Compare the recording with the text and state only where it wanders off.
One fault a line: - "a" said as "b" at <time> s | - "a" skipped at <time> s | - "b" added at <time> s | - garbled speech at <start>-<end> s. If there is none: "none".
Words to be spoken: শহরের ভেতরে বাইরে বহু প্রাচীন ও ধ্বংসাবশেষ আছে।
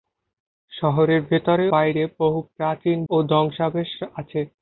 none